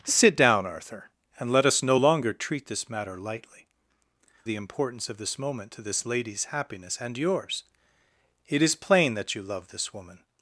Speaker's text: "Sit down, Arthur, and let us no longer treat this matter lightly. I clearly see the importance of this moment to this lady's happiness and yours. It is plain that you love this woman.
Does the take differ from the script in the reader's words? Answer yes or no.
yes